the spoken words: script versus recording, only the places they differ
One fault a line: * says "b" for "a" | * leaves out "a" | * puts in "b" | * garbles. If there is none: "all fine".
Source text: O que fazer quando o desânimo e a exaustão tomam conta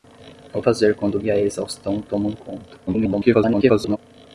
* leaves out "que"
* leaves out "desânimo"
* garbles